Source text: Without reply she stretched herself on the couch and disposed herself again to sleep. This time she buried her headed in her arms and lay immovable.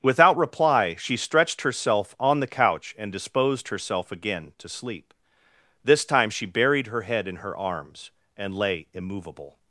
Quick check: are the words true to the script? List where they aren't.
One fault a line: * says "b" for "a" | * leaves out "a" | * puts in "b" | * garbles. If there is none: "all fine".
* says "head" for "headed"